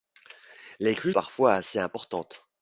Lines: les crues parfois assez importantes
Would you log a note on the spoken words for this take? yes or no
no